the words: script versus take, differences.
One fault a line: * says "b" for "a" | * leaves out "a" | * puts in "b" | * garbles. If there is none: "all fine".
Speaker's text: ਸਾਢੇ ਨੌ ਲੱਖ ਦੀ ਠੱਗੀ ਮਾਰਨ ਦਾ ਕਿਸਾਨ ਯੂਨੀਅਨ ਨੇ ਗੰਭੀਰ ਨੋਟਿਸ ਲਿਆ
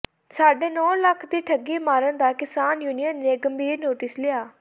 all fine